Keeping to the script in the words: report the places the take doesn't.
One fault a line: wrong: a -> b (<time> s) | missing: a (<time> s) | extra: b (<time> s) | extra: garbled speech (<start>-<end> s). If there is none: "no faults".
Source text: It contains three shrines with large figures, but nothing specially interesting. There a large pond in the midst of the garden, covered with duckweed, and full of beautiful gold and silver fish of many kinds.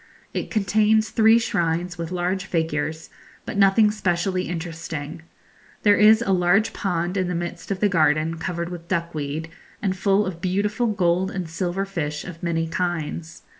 extra: is (6.0 s)